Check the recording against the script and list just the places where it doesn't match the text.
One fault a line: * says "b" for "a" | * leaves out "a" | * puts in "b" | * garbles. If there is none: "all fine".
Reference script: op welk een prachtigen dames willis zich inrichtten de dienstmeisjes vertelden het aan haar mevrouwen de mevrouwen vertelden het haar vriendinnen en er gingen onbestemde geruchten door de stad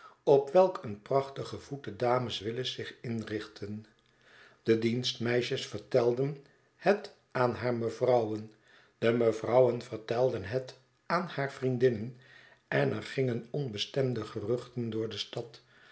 * puts in "voet de"
* puts in "aan"